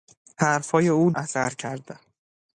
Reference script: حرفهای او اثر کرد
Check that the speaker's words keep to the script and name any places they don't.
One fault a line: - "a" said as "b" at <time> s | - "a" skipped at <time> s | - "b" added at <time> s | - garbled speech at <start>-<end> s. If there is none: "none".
none